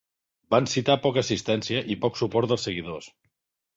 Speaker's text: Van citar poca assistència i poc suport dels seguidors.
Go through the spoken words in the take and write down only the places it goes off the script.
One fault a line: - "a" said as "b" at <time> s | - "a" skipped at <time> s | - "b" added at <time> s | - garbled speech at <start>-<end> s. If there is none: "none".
none